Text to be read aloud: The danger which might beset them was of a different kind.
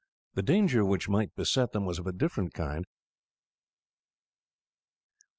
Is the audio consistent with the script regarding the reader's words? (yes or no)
yes